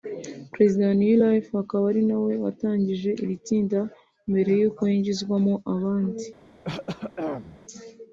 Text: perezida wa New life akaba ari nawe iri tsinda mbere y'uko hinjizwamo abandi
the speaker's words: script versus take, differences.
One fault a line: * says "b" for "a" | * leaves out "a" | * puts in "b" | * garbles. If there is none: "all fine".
* puts in "watangije"